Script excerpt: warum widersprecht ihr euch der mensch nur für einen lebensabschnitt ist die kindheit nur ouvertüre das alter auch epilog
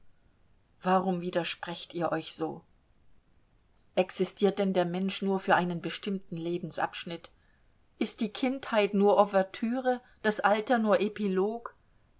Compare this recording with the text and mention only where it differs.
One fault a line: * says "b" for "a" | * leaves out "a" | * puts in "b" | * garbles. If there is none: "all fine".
* puts in "so existiert denn"
* puts in "bestimmten"
* says "nur" for "auch"